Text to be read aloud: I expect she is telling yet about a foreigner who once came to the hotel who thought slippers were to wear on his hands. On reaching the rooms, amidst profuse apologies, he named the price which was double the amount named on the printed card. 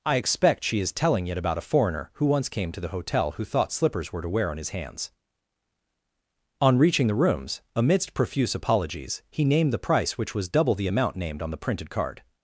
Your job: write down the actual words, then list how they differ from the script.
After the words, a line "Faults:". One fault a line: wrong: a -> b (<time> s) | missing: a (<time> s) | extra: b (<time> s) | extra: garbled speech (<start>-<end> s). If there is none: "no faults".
I expect she is telling it about a foreigner who once came to the hotel who thought slippers were to wear on his hands. On reaching the rooms, amidst profuse apologies, he named the price which was double the amount named on the printed card.
Faults:
wrong: yet -> it (1.3 s)